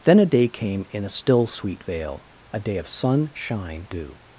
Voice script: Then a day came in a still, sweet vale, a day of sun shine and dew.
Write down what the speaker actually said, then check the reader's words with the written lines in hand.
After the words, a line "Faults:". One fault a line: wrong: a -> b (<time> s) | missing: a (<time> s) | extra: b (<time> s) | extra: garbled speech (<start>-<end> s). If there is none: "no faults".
Then a day came in a still, sweet vale, a day of sun shine dew.
Faults:
missing: and (3.9 s)